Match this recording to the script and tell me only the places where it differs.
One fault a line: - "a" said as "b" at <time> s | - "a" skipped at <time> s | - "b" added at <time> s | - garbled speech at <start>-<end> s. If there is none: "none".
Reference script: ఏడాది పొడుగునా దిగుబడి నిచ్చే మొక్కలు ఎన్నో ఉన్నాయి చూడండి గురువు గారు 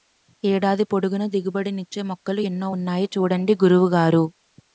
none